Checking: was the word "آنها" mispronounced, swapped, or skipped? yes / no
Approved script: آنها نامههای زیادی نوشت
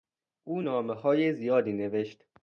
yes